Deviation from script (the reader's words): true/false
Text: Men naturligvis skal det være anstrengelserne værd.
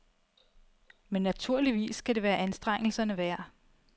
false